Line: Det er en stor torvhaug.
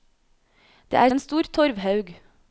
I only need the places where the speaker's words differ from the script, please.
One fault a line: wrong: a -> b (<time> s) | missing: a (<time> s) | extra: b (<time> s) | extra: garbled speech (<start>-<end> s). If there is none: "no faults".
no faults